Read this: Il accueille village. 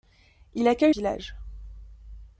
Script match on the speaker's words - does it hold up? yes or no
yes